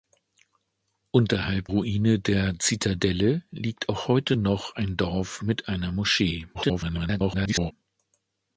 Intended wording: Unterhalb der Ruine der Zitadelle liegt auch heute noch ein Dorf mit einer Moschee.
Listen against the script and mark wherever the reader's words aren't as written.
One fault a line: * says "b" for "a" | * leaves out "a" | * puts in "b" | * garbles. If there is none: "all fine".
* leaves out "der"
* garbles